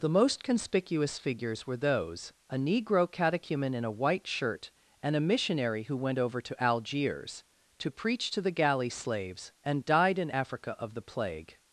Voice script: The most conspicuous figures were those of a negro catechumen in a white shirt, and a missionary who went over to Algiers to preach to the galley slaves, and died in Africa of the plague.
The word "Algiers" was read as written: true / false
true